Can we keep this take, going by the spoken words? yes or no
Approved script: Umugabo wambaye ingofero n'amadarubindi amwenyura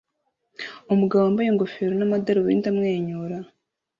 yes